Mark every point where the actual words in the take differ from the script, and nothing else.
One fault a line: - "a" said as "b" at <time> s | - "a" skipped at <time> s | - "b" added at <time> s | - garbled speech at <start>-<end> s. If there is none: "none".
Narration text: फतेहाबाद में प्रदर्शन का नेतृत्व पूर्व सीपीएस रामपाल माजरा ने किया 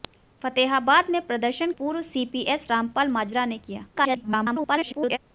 - "का नेतृत्व" skipped at 1.7 s
- garbled speech at 3.9-5.2 s